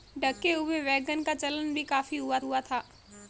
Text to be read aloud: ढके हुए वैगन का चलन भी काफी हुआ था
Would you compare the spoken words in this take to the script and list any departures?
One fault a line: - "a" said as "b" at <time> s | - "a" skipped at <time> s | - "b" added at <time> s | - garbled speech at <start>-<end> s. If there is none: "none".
- "हुआ" added at 2.4 s